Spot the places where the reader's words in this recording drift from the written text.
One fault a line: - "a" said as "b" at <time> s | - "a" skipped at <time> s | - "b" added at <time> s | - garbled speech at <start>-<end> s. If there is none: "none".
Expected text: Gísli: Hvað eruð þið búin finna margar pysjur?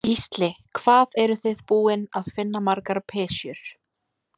- "að" added at 2.2 s